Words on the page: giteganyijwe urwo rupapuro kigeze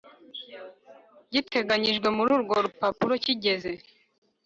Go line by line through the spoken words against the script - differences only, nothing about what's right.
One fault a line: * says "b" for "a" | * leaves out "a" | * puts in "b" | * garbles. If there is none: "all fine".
* puts in "muri"